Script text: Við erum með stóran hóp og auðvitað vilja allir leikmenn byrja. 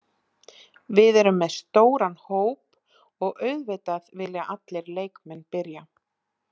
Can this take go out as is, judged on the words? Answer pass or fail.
pass